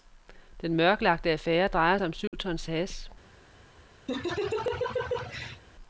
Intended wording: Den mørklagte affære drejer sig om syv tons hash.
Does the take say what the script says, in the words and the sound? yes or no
no